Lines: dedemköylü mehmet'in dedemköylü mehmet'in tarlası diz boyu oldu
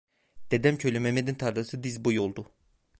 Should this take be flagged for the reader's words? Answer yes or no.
yes